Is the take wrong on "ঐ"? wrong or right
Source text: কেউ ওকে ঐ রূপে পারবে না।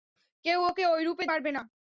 right